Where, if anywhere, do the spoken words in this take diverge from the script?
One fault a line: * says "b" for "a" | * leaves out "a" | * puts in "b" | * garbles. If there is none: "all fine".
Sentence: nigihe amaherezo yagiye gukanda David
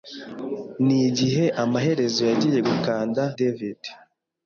all fine